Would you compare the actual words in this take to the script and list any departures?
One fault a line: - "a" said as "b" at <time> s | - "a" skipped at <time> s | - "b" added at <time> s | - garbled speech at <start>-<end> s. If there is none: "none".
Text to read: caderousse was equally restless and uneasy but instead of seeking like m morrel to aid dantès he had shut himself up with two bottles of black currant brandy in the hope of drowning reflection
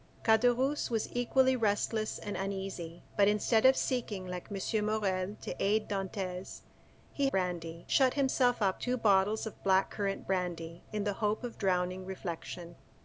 - "had" said as "brandy" at 7.3 s
- "with" skipped at 8.8 s